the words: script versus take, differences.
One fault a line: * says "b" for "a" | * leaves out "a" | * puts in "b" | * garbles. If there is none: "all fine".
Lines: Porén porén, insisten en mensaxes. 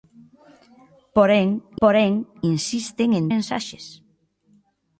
all fine